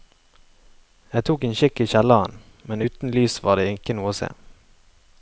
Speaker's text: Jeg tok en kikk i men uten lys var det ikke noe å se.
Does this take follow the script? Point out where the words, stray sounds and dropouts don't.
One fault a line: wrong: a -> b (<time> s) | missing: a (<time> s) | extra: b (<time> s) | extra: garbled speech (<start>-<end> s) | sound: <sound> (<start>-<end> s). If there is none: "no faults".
extra: kjelleren (1.9 s)